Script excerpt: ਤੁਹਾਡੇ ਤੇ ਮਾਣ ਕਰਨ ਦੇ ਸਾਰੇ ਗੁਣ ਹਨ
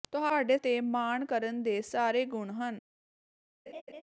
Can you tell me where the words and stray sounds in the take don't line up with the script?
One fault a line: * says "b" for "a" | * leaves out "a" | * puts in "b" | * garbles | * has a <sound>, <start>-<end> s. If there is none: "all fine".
* has a laugh, 3.7-4.0 s